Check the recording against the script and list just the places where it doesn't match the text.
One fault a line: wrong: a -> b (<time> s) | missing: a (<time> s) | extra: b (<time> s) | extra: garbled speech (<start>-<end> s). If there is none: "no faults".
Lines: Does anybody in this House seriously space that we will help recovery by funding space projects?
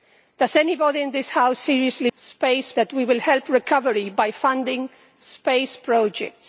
no faults